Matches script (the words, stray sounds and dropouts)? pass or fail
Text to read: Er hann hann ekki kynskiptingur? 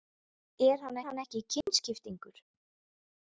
fail